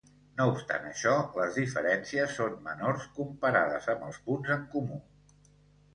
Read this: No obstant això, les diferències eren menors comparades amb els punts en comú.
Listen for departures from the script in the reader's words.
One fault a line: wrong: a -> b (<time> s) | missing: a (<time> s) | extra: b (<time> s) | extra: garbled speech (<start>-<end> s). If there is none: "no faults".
wrong: eren -> són (2.4 s)